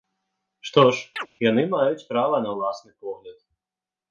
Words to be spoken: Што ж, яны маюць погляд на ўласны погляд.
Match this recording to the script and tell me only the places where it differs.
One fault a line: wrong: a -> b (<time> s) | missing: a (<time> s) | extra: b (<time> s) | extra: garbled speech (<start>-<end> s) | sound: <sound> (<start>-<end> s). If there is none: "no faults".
sound: chirp (1.2-1.3 s)
wrong: погляд -> права (2.1 s)